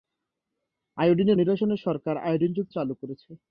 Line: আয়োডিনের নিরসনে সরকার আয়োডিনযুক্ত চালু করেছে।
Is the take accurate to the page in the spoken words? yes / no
yes